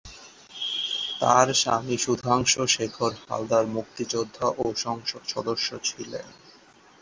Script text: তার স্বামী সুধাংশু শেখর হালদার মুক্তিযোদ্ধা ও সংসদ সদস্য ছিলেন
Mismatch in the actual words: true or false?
false